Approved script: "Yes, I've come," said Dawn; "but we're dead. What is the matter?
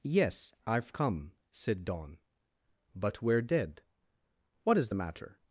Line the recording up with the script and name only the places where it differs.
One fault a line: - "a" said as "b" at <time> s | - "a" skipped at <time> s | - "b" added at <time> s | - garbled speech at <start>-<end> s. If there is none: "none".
none